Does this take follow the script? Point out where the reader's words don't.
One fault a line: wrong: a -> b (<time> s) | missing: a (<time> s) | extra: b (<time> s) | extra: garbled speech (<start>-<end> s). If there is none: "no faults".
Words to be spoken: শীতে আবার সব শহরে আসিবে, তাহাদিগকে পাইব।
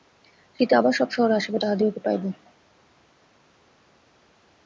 no faults